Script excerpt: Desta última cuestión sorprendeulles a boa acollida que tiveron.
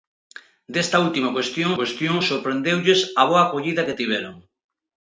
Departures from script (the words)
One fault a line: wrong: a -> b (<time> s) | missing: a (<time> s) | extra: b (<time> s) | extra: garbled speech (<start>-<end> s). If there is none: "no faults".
extra: cuestión (1.8 s)